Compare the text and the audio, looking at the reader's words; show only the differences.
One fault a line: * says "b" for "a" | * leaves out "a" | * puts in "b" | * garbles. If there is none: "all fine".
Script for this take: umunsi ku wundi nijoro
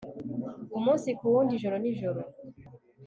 * puts in "ijoro"